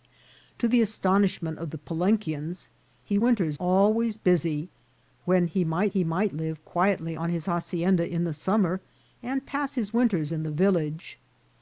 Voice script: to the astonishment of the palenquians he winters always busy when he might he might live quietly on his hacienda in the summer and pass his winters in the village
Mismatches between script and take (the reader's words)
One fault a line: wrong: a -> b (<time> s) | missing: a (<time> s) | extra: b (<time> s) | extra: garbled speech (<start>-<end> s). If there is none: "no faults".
no faults